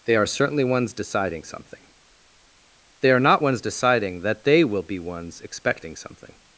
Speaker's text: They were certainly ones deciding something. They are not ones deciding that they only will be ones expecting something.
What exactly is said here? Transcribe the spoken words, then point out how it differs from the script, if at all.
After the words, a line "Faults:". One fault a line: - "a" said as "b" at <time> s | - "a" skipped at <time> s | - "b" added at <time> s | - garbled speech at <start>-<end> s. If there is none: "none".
They are certainly ones deciding something. They are not ones deciding that they will be ones expecting something.
Faults:
- "were" said as "are" at 0.1 s
- "only" skipped at 4.6 s